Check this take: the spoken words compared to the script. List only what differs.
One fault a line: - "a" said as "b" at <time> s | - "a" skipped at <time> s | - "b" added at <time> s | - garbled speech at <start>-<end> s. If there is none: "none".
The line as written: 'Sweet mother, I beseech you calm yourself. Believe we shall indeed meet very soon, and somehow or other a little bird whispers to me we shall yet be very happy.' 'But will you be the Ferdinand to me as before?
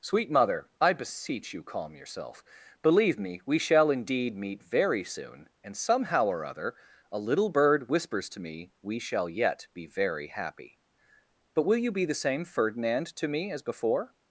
- "me" added at 3.2 s
- "same" added at 12.2 s